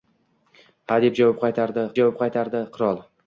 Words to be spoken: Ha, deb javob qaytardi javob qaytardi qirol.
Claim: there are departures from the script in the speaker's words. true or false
false